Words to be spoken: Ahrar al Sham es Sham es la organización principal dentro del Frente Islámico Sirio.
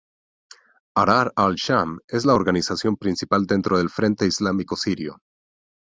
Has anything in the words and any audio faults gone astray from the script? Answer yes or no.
yes